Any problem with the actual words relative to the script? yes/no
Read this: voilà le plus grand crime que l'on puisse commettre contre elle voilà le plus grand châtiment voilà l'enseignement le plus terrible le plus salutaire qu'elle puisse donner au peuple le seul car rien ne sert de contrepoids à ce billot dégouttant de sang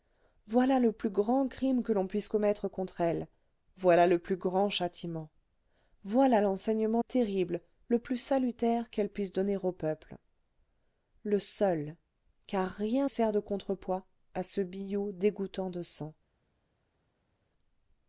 yes